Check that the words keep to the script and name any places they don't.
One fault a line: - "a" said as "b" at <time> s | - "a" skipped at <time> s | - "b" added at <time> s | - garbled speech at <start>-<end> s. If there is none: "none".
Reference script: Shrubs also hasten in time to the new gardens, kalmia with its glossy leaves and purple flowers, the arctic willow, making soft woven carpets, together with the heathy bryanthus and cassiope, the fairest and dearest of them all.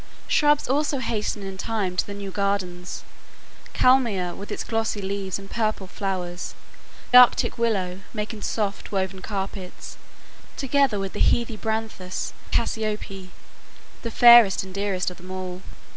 - "the" skipped at 6.5 s
- "and" skipped at 12.3 s